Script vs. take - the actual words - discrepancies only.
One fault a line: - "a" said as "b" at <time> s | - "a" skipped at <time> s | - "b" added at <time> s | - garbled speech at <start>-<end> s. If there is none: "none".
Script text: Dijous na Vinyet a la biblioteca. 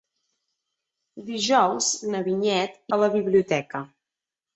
none